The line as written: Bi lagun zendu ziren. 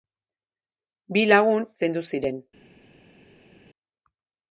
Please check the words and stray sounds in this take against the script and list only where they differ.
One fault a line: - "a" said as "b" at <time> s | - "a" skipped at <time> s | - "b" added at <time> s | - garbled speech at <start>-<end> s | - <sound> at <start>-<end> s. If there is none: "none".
none